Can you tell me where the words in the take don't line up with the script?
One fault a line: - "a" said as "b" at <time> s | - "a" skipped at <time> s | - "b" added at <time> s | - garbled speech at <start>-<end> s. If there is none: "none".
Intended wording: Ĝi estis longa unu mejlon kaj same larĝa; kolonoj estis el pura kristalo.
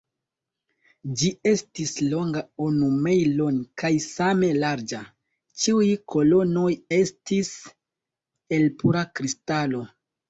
- "ĉiuj" added at 5.6 s